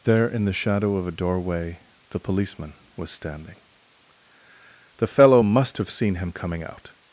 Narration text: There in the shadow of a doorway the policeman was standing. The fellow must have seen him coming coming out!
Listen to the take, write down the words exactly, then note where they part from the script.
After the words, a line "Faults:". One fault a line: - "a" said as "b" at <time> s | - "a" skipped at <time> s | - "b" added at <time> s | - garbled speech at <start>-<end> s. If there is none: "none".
There in the shadow of a doorway the policeman was standing. The fellow must have seen him coming out!
Faults:
- "coming" skipped at 6.6 s